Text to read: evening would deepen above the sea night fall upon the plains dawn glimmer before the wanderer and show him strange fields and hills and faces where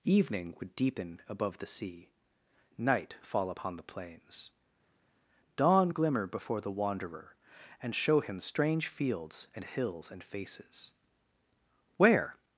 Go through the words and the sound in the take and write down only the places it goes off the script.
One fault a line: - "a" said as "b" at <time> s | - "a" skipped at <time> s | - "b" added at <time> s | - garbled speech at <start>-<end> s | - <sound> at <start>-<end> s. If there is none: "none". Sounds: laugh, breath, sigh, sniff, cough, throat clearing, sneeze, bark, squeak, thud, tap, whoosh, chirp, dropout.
none